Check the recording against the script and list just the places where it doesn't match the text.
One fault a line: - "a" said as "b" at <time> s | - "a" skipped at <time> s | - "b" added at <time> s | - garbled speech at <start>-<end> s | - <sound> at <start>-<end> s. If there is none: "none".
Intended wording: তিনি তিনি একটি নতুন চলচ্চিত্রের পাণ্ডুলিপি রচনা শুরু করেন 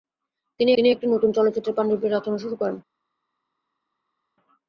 none